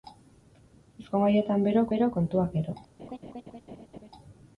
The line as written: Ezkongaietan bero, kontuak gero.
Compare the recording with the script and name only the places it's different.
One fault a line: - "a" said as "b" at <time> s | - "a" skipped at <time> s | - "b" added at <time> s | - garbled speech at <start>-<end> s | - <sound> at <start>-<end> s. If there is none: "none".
- "bero" added at 1.9 s
- laugh at 3.0-4.1 s